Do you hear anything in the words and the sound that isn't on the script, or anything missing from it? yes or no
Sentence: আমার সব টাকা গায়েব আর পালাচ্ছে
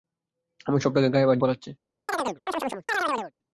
yes